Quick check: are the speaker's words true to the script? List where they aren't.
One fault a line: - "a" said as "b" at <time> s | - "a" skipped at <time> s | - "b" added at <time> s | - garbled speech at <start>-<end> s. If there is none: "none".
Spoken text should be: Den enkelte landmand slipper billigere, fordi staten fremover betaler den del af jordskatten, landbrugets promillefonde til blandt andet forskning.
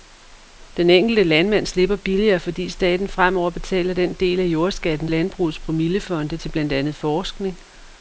none